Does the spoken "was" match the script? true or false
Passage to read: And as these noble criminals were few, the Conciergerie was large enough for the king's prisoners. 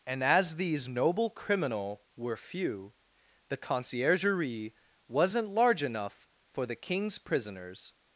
false